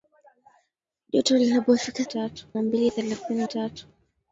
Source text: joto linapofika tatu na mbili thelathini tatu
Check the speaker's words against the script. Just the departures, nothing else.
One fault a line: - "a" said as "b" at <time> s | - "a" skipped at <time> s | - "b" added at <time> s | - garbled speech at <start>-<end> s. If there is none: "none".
none